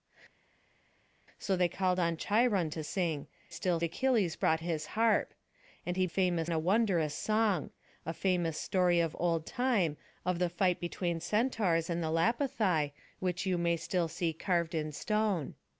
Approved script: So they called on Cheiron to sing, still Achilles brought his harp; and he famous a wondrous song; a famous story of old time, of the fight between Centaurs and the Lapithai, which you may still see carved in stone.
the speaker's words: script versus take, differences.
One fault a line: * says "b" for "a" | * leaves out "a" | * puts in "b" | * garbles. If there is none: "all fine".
all fine